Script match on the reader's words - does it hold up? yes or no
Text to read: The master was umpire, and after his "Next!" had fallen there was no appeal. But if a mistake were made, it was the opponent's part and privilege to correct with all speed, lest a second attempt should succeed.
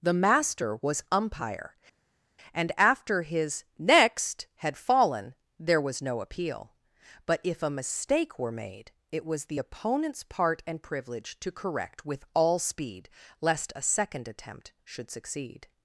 yes